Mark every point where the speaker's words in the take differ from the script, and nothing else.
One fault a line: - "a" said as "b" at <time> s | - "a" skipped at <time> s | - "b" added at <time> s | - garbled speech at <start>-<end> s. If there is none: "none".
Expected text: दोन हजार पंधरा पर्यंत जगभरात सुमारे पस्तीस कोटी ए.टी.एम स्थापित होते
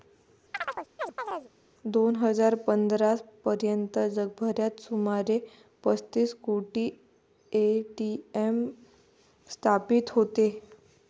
none